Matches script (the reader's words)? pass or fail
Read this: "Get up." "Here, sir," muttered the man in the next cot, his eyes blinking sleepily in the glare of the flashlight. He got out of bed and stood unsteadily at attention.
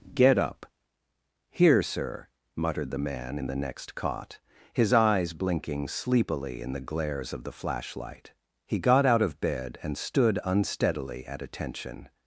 fail